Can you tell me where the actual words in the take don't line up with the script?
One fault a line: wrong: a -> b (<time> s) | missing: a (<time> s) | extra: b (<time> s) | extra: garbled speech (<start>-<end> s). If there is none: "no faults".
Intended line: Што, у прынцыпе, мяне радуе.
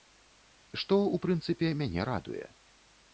no faults